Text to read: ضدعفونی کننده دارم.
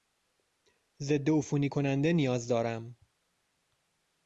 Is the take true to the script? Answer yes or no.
no